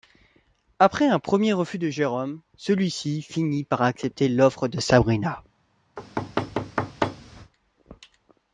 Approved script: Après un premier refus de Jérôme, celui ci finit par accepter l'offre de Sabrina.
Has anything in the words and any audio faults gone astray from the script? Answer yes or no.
yes